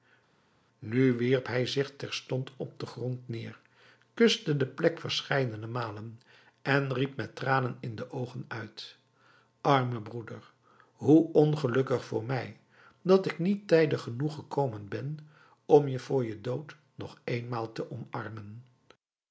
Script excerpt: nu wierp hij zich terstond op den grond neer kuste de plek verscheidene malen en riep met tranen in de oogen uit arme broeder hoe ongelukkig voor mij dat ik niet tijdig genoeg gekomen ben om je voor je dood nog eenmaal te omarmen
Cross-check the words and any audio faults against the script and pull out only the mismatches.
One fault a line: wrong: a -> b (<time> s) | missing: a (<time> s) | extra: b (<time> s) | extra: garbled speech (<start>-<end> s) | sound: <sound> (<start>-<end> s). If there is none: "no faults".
no faults